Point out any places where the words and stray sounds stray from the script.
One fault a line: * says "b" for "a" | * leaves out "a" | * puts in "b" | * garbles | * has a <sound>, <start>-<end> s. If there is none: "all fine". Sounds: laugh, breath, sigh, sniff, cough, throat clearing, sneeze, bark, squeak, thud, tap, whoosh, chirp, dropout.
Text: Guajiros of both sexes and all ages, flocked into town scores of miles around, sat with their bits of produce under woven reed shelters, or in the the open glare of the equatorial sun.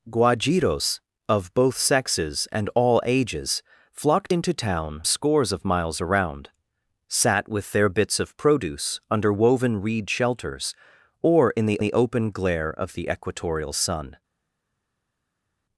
all fine